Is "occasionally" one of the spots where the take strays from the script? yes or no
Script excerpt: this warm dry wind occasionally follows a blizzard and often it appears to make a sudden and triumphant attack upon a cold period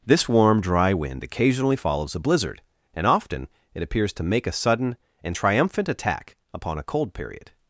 no